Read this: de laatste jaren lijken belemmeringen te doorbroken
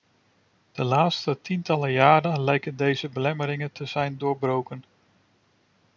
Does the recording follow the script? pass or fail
fail